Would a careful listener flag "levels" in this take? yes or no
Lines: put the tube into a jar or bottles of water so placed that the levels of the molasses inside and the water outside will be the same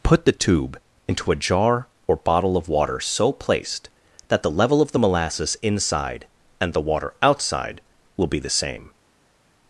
yes